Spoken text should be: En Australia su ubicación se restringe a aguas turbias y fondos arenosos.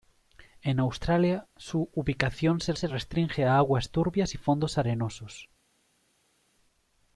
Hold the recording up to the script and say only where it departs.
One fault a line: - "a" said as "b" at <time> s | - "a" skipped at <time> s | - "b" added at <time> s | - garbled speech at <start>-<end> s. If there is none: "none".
- "se" added at 2.7 s